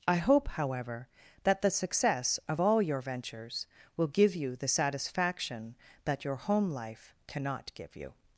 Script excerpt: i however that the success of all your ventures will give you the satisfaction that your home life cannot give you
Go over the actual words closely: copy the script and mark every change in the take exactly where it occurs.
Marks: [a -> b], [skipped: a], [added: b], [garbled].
i [added: hope] however that the success of all your ventures will give you the satisfaction that your home life cannot give you